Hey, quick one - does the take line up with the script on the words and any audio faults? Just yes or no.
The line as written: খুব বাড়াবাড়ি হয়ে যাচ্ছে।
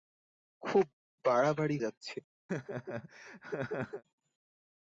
no